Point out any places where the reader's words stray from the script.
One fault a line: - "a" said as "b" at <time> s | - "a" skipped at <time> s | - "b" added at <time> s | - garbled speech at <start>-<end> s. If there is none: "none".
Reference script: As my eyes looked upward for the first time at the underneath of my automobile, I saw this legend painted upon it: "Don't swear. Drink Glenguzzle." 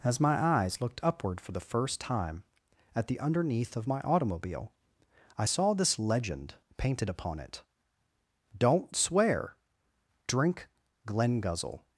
none